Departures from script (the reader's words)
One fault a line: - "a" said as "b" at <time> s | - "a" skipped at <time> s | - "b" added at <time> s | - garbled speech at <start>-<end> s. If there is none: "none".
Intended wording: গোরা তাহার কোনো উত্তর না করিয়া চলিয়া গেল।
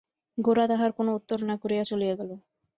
none